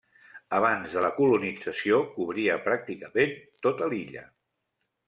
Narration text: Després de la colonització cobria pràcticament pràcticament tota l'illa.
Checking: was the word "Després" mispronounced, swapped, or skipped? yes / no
yes